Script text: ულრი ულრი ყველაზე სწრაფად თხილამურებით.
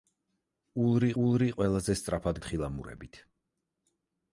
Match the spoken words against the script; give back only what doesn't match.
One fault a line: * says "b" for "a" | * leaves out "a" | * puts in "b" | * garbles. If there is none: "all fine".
all fine